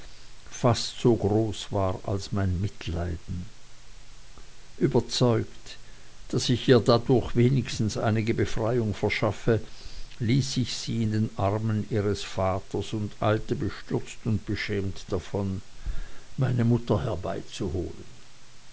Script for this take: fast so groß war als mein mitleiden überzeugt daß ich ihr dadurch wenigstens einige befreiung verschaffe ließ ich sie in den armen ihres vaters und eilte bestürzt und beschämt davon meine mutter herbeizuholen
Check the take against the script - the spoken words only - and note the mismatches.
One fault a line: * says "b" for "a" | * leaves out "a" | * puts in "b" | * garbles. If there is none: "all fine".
all fine